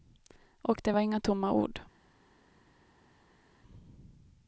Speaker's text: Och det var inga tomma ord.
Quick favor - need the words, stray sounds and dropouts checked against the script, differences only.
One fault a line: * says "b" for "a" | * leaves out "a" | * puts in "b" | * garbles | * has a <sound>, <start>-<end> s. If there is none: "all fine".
all fine